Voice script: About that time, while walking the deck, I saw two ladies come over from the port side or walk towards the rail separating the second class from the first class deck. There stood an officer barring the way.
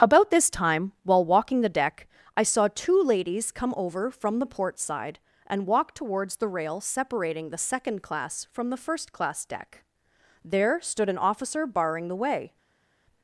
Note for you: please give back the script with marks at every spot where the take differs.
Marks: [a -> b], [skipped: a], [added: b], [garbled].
About [that -> this] time, while walking the deck, I saw two ladies come over from the port side [or -> and] walk towards the rail separating the second class from the first class deck. There stood an officer barring the way.